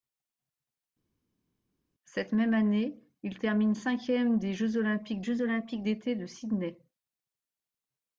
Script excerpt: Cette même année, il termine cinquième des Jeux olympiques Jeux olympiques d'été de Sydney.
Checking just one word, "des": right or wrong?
right